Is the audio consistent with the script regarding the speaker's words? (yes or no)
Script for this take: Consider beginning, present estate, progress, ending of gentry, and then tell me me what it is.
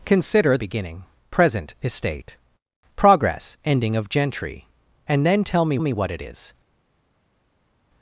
yes